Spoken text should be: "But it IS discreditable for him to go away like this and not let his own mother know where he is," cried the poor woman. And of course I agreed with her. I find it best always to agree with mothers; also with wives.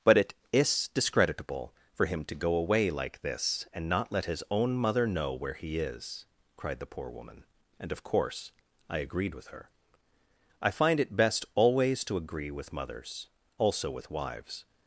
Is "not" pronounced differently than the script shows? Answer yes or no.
no